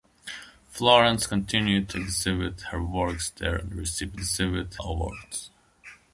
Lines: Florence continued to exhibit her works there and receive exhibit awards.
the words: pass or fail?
pass